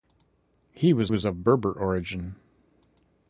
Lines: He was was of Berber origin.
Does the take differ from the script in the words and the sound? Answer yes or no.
no